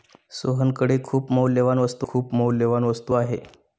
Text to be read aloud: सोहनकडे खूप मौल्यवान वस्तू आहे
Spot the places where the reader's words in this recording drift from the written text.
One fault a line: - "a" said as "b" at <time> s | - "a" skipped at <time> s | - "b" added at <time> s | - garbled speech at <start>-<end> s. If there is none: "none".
- "खूप मौल्यवान वस्तू" added at 2.0 s